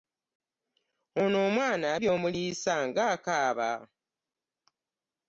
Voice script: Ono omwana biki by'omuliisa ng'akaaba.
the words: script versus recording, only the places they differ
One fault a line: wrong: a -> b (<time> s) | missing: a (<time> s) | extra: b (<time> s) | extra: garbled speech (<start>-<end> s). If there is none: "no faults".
missing: biki (1.9 s)